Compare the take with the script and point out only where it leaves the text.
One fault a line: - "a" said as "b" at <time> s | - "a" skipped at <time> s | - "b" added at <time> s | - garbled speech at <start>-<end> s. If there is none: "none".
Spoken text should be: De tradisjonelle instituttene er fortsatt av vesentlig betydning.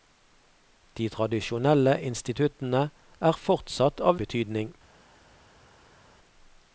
- "vesentlig" skipped at 4.2 s